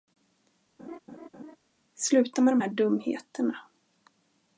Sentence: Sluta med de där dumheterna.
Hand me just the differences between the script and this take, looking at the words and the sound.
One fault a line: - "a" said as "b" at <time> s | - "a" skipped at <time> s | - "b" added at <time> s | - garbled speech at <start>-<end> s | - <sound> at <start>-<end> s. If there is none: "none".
- laugh at 0.8-1.6 s
- "där" said as "här" at 2.6 s